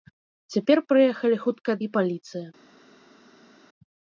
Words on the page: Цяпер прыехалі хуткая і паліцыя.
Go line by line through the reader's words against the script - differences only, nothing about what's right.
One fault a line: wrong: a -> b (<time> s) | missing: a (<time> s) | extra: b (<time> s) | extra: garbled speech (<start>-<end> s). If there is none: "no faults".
no faults